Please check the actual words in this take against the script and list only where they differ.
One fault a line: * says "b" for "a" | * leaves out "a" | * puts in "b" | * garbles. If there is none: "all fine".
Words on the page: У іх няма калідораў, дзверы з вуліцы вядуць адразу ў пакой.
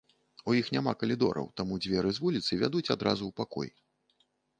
* puts in "таму"